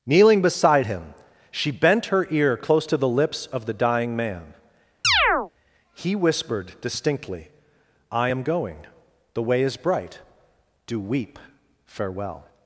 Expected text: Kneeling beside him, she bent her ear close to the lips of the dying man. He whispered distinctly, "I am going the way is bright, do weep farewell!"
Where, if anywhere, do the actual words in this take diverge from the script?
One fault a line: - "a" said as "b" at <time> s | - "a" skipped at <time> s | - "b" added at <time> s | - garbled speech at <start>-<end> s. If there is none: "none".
none